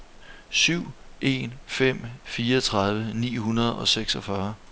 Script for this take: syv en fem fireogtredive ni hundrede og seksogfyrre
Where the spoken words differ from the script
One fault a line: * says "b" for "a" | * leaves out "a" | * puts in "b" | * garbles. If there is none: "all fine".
all fine